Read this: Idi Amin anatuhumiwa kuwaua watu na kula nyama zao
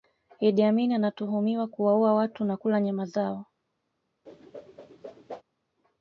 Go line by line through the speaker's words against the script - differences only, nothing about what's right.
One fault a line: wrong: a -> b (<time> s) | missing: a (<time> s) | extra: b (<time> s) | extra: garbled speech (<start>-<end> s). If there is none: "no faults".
no faults